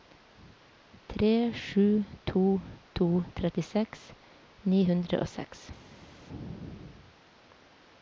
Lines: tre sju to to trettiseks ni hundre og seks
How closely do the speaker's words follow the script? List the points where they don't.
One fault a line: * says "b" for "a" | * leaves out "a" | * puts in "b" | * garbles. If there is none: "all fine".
all fine